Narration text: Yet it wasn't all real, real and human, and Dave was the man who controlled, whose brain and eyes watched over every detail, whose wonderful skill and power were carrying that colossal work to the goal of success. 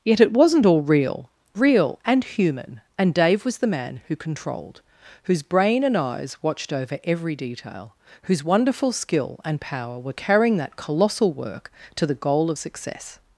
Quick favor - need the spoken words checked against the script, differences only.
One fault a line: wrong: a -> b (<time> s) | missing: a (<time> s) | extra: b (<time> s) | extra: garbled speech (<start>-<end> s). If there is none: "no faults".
no faults